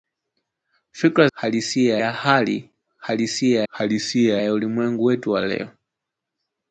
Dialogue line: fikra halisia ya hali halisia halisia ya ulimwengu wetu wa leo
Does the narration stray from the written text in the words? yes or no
no